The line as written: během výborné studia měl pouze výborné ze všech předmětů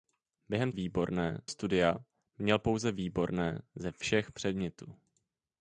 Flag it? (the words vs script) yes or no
no